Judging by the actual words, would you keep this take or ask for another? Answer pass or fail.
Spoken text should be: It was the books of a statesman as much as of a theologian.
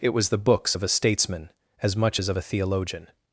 pass